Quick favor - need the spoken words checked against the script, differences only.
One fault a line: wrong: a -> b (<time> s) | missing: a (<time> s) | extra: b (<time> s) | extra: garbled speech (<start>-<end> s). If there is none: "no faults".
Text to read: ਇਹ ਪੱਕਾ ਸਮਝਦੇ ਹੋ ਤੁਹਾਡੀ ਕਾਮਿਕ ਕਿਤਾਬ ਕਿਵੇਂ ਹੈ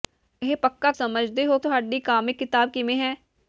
no faults